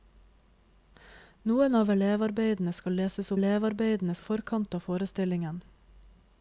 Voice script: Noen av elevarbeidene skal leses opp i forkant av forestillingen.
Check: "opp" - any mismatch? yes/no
yes